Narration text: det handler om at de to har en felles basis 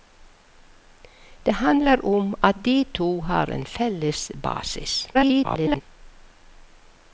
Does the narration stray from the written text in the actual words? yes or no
yes